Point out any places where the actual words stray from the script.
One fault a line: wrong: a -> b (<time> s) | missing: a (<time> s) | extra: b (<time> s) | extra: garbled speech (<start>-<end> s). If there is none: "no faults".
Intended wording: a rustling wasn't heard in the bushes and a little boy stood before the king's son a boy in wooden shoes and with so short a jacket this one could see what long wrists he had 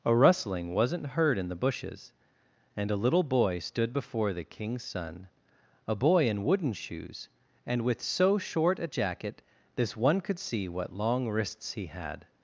no faults